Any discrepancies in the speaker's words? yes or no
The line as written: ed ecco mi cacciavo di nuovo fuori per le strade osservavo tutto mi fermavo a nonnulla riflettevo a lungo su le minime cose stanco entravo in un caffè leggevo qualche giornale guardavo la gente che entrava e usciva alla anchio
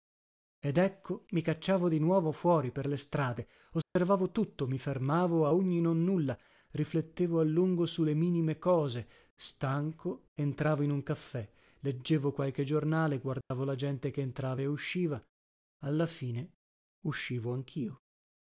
yes